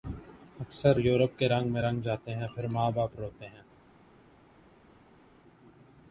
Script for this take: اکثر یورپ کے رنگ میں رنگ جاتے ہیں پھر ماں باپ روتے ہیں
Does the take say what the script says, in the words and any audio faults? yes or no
yes